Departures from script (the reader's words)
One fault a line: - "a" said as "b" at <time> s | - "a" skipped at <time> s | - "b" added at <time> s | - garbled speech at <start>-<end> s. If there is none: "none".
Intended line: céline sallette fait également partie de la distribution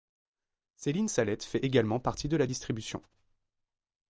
none